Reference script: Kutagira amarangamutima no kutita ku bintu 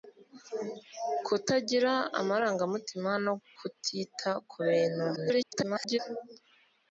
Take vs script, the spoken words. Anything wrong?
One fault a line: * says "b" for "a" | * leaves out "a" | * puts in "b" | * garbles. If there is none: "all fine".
* garbles